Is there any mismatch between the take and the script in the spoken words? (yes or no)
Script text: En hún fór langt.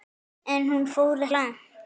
no